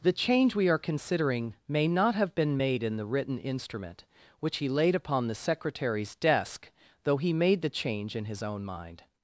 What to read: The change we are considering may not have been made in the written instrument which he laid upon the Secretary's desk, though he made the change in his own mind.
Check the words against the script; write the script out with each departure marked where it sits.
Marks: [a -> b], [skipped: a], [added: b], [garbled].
The change we are considering may not have been made in the written instrument which he laid upon the Secretary's desk, though he made the change in his own mind.